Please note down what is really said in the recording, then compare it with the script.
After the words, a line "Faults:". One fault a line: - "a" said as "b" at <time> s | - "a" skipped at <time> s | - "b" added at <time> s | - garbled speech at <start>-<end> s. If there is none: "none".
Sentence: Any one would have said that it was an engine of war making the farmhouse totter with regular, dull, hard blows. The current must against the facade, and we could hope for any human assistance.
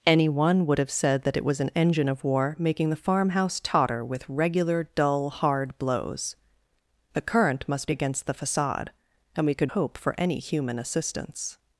Any one would have said that it was an engine of war making the farmhouse totter with regular, dull, hard blows. The current must against the facade, and we could hope for any human assistance.
Faults:
none